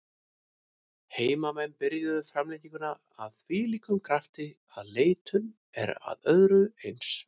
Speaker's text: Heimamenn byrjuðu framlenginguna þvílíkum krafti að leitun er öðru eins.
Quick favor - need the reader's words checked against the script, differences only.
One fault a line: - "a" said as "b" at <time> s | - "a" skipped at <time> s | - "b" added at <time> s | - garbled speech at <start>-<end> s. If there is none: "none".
- "af" added at 3.3 s
- "að" added at 6.1 s